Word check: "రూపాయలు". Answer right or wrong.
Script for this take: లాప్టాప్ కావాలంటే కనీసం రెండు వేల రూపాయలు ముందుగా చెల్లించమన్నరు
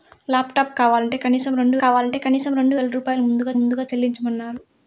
right